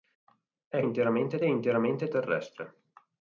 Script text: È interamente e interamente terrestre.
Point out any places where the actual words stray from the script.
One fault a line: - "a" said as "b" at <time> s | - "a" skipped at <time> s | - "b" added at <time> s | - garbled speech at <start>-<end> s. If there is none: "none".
none